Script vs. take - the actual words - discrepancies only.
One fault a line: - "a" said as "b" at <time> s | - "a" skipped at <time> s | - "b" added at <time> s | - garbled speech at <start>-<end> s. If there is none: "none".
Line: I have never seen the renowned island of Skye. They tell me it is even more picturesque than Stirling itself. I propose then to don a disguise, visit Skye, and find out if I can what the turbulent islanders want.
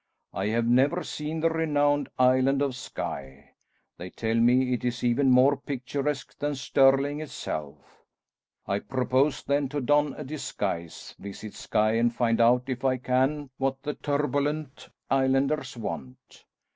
none